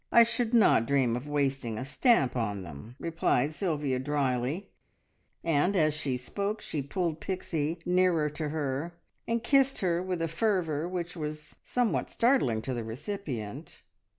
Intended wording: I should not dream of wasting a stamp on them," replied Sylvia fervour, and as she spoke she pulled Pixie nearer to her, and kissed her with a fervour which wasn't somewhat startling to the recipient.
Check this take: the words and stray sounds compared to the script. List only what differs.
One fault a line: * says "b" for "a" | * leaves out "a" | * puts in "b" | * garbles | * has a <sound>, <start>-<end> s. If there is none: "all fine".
* says "drily" for "fervour"
* says "was" for "wasn't"